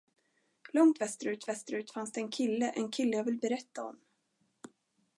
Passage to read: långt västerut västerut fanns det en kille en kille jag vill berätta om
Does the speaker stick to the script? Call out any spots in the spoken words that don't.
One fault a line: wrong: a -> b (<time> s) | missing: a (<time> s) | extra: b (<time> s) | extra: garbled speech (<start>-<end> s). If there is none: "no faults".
no faults